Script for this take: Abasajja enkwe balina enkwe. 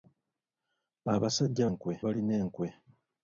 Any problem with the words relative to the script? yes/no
no